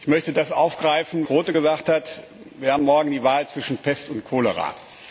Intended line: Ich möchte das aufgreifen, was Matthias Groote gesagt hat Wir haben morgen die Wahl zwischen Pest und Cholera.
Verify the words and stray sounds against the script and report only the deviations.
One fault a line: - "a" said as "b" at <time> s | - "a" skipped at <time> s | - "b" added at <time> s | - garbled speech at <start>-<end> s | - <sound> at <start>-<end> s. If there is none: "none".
- "was Matthias" skipped at 1.3 s